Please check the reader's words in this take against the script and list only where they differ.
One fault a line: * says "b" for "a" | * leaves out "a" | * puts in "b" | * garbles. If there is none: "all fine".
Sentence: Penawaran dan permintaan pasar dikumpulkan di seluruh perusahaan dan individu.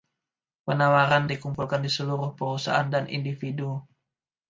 * leaves out "dan permintaan pasar"